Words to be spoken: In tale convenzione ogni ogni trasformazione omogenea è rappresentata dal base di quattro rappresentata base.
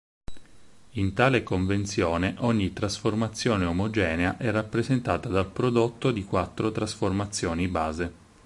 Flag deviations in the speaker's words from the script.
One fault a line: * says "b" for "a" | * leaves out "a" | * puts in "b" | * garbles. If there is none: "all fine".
* leaves out "ogni"
* says "prodotto" for "base"
* says "trasformazioni" for "rappresentata"